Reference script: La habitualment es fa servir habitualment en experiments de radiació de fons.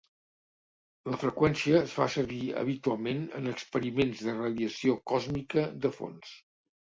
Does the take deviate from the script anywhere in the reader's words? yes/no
yes